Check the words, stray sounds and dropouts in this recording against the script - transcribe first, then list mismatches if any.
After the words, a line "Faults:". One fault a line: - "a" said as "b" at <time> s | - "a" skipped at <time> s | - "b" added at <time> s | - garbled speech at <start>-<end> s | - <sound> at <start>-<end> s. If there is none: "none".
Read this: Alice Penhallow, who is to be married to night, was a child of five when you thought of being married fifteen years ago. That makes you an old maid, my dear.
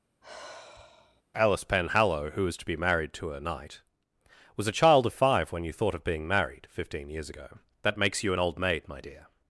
Alice Penhallow, who was to be married to a knight, was a child of five when you thought of being married fifteen years ago. That makes you an old maid, my dear.
Faults:
- sigh at 0.2-1.2 s
- "is" said as "was" at 2.5 s
- "night" said as "a knight" at 3.3 s